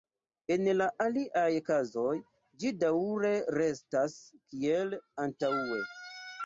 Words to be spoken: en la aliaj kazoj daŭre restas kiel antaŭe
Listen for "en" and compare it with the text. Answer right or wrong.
right